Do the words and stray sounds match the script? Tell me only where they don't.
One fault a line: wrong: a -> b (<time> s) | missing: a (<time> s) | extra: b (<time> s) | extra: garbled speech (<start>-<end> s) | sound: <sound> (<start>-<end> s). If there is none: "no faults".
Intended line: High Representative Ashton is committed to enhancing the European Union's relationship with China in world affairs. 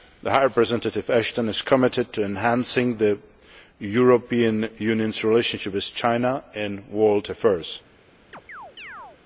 sound: chirp (8.3-9.2 s)